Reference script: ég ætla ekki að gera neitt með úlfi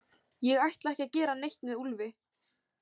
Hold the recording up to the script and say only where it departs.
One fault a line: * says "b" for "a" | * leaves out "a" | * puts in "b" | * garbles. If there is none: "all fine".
all fine